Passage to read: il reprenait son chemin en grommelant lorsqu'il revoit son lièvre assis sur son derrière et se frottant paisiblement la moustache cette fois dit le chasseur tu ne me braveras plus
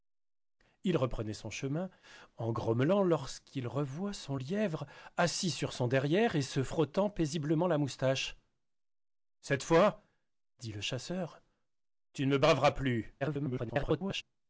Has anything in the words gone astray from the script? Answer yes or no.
yes